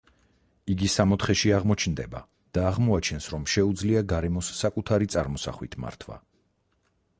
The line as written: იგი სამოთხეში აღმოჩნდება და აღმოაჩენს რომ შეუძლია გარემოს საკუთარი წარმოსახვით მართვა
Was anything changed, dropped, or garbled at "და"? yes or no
no